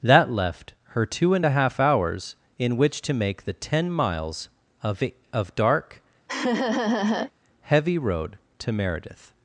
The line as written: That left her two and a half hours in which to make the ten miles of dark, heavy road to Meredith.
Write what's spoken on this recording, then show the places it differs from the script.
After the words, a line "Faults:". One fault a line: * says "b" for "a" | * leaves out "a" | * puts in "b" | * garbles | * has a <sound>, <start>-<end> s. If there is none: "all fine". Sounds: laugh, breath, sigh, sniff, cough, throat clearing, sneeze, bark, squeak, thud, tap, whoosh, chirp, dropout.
That left her two and a half hours in which to make the ten miles of of dark, heavy road to Meredith.
Faults:
* puts in "of"
* has a laugh, 6.3-7.3 s